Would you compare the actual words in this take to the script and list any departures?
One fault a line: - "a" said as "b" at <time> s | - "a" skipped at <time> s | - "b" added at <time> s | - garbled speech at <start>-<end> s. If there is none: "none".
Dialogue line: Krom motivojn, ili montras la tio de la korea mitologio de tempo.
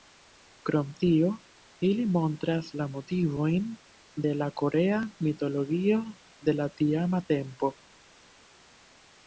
- "motivojn" said as "tio" at 1.0 s
- "tio" said as "motivojn" at 2.9 s
- "la tiama" added at 6.6 s